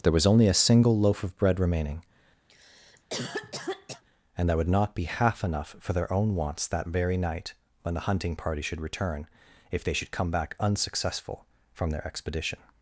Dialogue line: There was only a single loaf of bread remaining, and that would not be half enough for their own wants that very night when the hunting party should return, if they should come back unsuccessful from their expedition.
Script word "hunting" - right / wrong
right